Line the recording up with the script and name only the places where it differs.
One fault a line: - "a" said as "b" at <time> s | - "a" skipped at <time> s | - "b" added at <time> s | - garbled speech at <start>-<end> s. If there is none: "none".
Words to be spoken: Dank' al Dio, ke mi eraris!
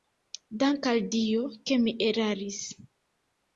none